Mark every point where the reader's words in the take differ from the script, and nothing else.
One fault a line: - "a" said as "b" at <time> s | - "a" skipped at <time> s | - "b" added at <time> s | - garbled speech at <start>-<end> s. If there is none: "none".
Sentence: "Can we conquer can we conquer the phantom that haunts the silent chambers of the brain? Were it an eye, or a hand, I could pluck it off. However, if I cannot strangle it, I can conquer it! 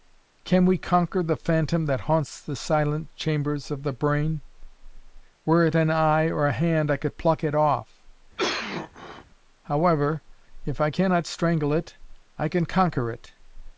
- "can we conquer" skipped at 1.2 s